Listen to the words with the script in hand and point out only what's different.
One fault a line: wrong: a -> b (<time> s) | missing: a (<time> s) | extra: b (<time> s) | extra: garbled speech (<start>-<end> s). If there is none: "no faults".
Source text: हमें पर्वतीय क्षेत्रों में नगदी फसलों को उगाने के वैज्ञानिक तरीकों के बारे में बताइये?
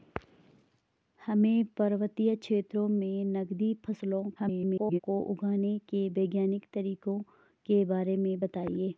extra: garbled speech (4.4-5.0 s)